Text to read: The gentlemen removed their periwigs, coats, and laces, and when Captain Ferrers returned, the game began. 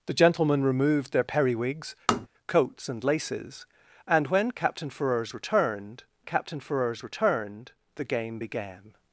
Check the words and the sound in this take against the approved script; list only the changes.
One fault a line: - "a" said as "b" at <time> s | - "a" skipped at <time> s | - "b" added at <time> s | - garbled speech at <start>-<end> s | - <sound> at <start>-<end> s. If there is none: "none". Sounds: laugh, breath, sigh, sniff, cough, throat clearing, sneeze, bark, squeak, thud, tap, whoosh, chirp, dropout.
- tap at 2.1-2.3 s
- "Captain Ferrers returned" added at 6.2 s